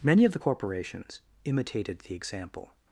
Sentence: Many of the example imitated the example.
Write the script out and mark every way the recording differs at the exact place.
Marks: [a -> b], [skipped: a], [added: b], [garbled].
Many of the [example -> corporations] imitated the example.